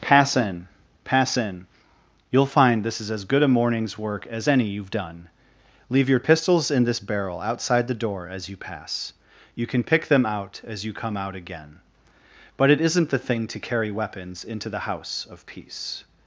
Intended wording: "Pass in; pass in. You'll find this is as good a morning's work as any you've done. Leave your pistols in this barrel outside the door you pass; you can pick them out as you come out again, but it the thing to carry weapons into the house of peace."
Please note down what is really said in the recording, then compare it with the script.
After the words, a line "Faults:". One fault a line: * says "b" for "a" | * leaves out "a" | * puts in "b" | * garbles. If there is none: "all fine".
"Pass in; pass in. You'll find this is as good a morning's work as any you've done. Leave your pistols in this barrel outside the door as you pass; you can pick them out as you come out again, but it isn't the thing to carry weapons into the house of peace."
Faults:
* puts in "as"
* puts in "isn't"